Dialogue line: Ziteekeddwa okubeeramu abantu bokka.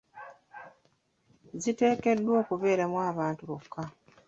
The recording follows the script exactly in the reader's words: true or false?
true